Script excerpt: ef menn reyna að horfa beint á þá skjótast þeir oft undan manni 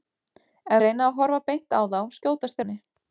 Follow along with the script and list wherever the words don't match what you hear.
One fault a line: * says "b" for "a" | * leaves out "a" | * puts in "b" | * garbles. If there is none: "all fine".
* leaves out "menn"
* leaves out "þeir oft undan"